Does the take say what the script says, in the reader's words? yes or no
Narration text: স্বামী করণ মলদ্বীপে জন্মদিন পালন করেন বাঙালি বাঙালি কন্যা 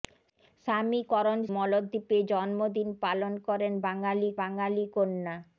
yes